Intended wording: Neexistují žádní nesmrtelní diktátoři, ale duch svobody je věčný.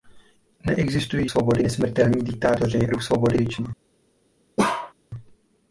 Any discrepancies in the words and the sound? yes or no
yes